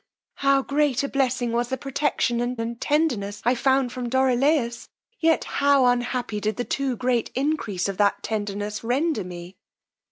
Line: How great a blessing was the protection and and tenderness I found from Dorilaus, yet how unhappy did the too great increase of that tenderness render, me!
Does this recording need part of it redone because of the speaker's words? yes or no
no